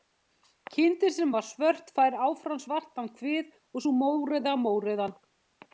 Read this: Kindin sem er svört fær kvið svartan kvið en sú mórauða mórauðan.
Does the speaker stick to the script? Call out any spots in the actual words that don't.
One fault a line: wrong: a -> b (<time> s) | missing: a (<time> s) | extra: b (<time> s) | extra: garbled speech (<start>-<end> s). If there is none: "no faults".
wrong: er -> var (1.3 s)
wrong: kvið -> áfram (2.3 s)
wrong: en -> og (3.7 s)